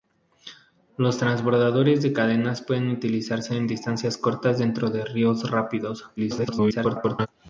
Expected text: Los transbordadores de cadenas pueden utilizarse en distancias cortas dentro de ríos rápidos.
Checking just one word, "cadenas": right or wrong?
right